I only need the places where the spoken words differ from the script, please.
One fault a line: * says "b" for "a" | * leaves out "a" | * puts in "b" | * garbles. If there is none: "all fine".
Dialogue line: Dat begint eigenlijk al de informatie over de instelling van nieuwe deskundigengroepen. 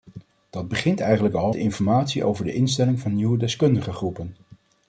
all fine